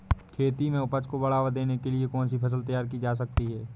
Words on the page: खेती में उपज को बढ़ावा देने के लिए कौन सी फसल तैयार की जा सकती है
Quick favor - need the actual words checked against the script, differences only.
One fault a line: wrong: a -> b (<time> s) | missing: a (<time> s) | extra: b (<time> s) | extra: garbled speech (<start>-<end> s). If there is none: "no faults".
no faults